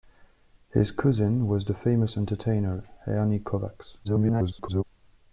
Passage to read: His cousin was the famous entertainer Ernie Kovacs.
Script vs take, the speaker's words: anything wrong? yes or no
yes